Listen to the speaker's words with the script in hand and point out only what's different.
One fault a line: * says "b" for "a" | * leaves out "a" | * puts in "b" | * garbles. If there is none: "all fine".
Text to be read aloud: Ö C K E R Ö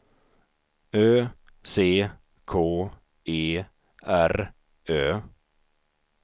all fine